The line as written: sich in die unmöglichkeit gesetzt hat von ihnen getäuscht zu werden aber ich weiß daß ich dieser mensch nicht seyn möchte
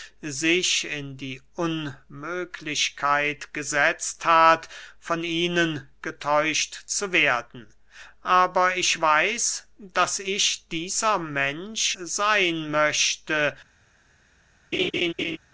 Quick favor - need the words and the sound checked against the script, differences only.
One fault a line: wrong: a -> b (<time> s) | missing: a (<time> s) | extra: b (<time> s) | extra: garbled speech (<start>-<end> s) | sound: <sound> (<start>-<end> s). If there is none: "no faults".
missing: nicht (12.0 s)
sound: laugh (14.7-15.4 s)